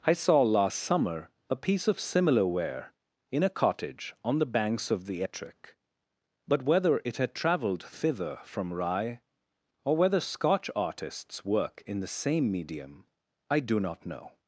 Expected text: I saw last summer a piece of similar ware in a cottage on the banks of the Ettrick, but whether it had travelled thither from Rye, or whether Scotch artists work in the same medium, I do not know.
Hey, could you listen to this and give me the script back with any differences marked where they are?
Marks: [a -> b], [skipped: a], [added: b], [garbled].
I saw last summer a piece of similar ware in a cottage on the banks of the Ettrick, but whether it had travelled thither from Rye, or whether Scotch artists work in the same medium, I do not know.